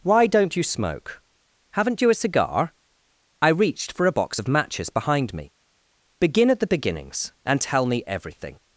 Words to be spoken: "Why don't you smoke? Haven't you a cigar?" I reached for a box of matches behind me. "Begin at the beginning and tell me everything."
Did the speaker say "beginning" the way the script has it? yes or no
no